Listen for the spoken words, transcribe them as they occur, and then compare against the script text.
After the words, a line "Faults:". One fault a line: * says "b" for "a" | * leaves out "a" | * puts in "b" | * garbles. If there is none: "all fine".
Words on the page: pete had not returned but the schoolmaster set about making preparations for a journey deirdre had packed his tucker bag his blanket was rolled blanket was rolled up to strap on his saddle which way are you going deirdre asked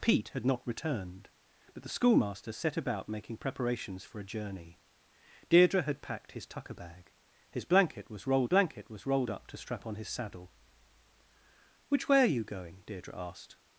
pete had not returned but the schoolmaster set about making preparations for a journey deirdre had packed his tucker bag his blanket was rolled blanket was rolled up to strap on his saddle which way are you going deirdre asked
Faults:
all fine